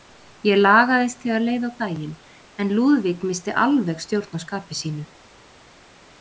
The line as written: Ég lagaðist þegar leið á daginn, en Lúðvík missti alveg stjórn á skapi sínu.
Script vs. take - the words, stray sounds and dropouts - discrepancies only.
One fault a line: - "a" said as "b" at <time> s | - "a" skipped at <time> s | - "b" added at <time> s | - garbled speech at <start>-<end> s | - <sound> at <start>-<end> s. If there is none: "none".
none